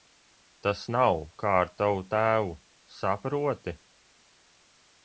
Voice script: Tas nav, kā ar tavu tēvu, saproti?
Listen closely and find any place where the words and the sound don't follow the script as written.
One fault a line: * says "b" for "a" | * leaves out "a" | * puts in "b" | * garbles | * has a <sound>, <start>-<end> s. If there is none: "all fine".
all fine